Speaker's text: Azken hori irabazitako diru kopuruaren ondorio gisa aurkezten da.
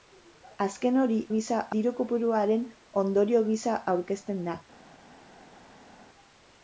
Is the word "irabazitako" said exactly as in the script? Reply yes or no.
no